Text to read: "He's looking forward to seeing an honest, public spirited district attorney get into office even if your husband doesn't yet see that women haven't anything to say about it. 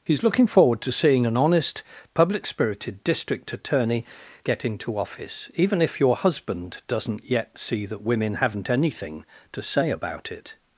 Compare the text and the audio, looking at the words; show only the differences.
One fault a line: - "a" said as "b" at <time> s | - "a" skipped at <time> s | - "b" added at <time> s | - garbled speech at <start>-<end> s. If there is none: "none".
none